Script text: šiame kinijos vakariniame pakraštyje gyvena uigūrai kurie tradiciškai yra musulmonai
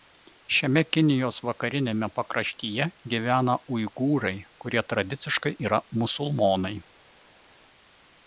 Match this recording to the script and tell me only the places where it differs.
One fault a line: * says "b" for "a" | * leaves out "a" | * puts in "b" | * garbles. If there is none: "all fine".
all fine